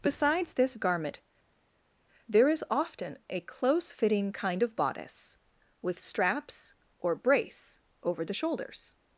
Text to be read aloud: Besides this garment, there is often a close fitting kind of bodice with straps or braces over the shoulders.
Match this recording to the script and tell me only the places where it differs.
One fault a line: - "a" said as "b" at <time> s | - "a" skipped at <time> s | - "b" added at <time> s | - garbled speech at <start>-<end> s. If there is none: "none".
- "braces" said as "brace" at 7.1 s